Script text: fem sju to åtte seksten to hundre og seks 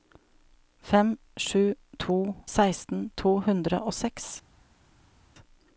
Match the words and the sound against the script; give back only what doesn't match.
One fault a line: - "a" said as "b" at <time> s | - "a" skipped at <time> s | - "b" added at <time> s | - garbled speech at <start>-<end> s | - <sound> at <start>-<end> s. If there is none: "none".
- "åtte" skipped at 2.3 s